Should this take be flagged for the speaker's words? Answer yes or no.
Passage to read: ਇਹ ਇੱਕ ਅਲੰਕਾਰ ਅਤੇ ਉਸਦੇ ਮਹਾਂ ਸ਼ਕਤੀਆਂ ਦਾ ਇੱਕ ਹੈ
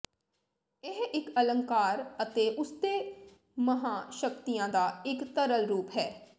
yes